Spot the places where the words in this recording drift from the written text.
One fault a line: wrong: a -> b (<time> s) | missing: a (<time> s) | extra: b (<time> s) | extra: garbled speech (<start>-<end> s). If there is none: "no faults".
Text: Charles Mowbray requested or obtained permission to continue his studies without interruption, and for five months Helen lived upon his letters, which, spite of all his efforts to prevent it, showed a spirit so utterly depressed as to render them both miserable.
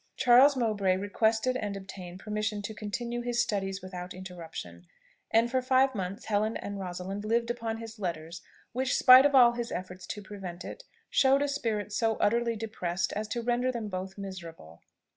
wrong: or -> and (1.6 s)
extra: and Rosalind (6.6 s)